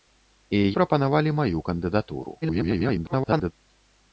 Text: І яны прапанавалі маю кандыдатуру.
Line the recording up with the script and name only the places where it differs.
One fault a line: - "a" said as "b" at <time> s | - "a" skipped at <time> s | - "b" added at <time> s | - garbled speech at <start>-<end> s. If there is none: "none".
- "яны" skipped at 0.6 s
- garbled speech at 2.4-3.5 s